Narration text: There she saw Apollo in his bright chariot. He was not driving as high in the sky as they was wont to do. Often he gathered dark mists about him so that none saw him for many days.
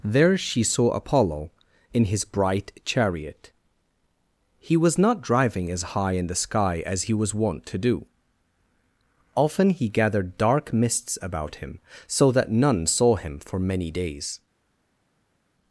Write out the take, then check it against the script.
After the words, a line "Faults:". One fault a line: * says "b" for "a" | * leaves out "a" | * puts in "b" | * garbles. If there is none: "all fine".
There she saw Apollo in his bright chariot. He was not driving as high in the sky as he was wont to do. Often he gathered dark mists about him so that none saw him for many days.
Faults:
* says "he" for "they"